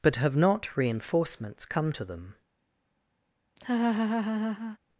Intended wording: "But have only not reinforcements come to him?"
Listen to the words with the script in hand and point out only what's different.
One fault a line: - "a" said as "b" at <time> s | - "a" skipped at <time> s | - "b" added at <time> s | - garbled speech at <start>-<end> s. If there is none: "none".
- "only" skipped at 0.3 s
- "him" said as "them" at 2.1 s